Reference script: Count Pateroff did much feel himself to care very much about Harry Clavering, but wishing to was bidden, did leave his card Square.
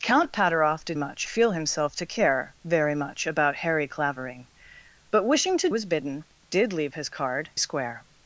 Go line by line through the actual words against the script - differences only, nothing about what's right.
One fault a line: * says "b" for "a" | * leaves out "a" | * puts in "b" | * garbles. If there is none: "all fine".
all fine